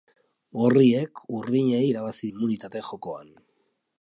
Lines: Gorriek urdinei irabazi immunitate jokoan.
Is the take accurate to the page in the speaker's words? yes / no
yes